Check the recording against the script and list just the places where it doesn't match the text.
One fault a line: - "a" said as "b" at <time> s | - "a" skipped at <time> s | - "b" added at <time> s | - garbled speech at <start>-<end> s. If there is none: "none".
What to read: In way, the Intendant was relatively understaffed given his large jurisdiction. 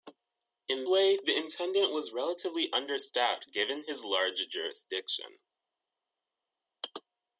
none